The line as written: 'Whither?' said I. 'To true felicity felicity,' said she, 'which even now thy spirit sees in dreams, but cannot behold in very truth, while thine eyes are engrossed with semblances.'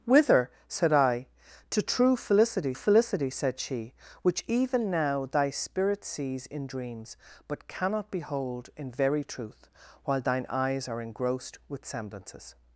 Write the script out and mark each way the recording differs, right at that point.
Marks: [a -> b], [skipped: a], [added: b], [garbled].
'Whither?' said I. 'To true felicity felicity,' said she, 'which even now thy spirit sees in dreams, but cannot behold in very truth, while thine eyes are engrossed with semblances.'